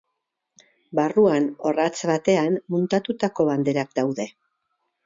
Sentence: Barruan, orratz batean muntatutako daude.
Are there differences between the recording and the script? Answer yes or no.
yes